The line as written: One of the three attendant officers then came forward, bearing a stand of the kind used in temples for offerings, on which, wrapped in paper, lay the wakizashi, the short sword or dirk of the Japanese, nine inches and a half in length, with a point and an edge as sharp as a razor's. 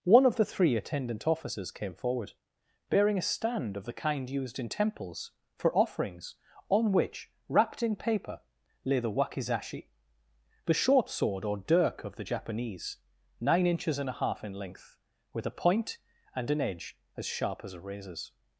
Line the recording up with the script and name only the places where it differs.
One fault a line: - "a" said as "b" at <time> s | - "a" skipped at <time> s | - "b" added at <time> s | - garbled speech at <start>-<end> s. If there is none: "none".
- "then" skipped at 1.7 s